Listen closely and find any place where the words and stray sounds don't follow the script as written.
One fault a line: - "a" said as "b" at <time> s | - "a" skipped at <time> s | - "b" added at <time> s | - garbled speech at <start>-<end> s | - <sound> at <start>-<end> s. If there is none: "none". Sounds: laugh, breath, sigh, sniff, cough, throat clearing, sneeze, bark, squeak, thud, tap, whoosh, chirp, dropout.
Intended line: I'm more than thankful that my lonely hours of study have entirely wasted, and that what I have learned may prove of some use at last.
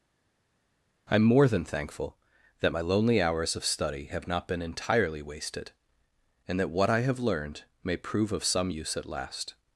- "not been" added at 4.3 s